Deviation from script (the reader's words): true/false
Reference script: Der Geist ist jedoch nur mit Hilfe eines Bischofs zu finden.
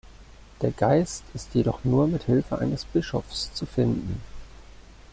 false